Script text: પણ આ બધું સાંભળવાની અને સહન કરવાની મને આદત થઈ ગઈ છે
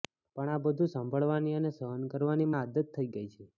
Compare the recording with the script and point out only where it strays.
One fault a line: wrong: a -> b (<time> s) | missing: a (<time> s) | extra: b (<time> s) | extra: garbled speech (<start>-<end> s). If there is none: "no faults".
missing: મને (2.5 s)